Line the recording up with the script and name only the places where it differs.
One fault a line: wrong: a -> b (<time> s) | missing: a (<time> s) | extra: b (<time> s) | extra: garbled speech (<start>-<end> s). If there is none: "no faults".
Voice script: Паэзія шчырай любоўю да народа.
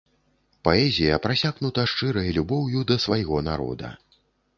extra: прасякнута (1.2 s)
extra: свайго (3.1 s)